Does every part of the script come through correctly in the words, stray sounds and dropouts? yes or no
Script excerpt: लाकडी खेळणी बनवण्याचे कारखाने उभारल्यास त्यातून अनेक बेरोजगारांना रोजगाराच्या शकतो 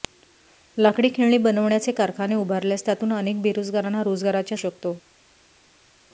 yes